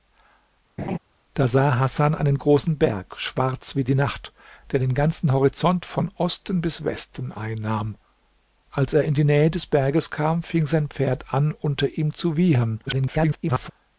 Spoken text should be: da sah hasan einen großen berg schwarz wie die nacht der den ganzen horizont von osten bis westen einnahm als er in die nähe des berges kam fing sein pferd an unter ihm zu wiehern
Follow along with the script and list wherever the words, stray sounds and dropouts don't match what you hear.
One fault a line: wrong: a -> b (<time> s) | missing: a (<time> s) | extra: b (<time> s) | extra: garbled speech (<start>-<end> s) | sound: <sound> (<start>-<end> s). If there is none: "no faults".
sound: laugh (0.8-1.0 s)
extra: garbled speech (12.9-13.7 s)